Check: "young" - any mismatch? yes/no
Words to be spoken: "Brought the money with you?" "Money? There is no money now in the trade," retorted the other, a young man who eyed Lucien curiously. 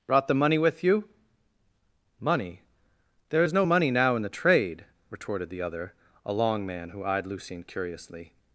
yes